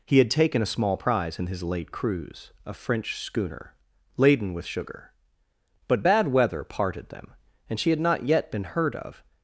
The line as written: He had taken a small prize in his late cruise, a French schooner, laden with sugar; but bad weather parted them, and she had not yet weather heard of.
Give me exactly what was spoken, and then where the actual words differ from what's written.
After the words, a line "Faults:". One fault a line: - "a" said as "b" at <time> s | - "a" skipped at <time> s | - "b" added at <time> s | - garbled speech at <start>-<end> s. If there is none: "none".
He had taken a small prize in his late cruise, a French schooner, laden with sugar; but bad weather parted them, and she had not yet been heard of.
Faults:
- "weather" said as "been" at 8.5 s